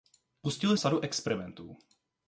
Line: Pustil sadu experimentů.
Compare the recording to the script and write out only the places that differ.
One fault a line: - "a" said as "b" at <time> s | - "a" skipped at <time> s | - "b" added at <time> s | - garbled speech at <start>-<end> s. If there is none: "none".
none